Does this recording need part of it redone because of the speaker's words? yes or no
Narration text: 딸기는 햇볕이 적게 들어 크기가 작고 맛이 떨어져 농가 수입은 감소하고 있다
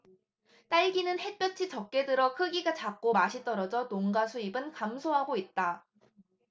no